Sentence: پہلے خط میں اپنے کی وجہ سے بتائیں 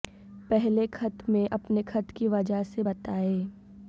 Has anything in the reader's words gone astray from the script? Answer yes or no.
yes